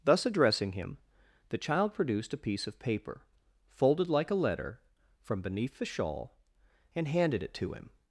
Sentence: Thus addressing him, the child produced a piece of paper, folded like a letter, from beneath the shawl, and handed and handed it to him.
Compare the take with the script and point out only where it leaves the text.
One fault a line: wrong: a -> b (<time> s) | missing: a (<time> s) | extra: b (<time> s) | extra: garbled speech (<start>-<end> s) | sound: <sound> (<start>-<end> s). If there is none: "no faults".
missing: and handed (7.4 s)